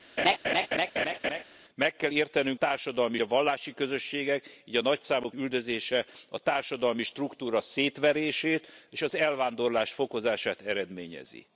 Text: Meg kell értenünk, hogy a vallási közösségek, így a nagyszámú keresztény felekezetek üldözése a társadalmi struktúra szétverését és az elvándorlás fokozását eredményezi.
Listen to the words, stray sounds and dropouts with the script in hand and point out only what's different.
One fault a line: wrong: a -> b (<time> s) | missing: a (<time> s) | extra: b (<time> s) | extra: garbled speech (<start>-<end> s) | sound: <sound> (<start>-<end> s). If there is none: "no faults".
sound: laugh (0.2-1.4 s)
wrong: hogy -> társadalmi (2.5 s)
missing: keresztény felekezetek (5.3 s)